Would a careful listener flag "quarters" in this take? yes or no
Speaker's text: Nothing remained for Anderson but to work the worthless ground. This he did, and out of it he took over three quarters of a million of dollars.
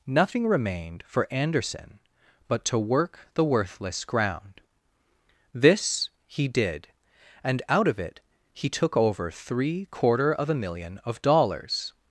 yes